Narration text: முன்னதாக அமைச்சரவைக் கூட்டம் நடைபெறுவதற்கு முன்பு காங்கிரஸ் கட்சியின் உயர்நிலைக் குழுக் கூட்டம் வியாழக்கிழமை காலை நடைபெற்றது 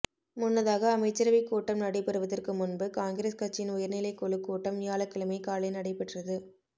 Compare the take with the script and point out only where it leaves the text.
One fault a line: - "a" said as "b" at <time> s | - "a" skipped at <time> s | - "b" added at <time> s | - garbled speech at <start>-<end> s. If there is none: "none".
none